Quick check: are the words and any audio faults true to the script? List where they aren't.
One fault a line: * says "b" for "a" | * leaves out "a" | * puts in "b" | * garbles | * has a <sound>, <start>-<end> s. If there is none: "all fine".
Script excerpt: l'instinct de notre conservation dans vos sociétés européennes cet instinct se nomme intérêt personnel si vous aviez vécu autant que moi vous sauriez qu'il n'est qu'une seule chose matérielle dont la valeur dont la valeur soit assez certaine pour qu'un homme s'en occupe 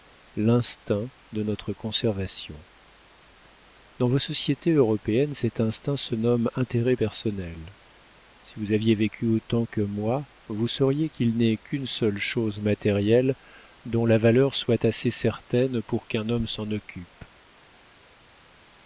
* leaves out "dont la valeur"